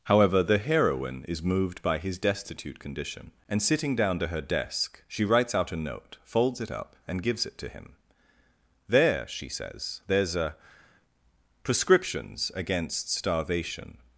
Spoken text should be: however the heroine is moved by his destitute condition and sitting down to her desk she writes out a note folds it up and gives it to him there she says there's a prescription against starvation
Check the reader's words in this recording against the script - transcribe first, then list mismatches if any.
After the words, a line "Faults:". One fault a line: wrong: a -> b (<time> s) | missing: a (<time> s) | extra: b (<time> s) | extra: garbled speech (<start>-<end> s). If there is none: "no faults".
however the heroine is moved by his destitute condition and sitting down to her desk she writes out a note folds it up and gives it to him there she says there's a prescriptions against starvation
Faults:
wrong: prescription -> prescriptions (11.6 s)